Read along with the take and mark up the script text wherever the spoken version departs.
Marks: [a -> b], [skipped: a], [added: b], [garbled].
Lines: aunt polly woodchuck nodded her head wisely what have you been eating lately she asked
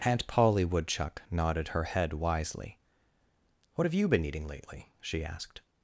aunt polly woodchuck nodded her head wisely what have you been eating lately she asked